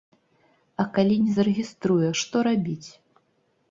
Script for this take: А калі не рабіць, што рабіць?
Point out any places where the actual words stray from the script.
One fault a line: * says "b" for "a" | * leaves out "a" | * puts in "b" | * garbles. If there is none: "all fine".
* says "зарэгіструе" for "рабіць"